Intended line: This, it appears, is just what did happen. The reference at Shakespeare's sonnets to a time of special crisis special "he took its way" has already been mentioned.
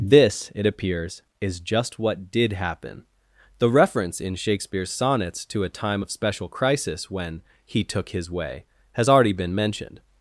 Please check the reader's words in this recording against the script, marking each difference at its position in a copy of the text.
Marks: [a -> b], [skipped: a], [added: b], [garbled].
This, it appears, is just what did happen. The reference [at -> in] Shakespeare's sonnets to a time of special crisis [special -> when] "he took [its -> his] way" has already been mentioned.